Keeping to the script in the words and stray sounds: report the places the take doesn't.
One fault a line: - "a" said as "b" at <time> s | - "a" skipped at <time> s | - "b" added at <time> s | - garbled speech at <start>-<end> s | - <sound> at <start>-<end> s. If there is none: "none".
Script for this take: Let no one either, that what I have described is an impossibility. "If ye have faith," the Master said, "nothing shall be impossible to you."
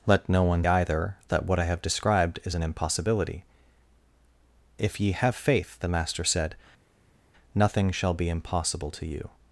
none